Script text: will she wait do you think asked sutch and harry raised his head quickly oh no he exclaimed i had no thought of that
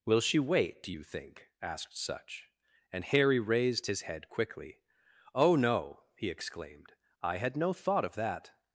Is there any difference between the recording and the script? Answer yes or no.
no